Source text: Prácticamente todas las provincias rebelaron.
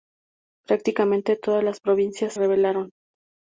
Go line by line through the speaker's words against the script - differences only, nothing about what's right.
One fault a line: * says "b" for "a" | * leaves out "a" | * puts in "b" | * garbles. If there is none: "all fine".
all fine